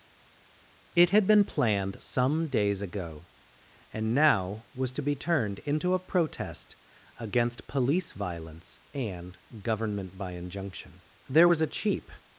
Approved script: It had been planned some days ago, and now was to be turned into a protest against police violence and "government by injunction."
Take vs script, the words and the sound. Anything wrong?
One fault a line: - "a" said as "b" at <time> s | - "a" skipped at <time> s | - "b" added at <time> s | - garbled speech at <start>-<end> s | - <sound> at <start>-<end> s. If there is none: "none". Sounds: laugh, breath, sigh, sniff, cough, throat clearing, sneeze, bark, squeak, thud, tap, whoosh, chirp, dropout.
- "There was a cheap" added at 11.3 s